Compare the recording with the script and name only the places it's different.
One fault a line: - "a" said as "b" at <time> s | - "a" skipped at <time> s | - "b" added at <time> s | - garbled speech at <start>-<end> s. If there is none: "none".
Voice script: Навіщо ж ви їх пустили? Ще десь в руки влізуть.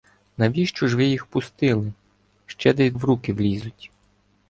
none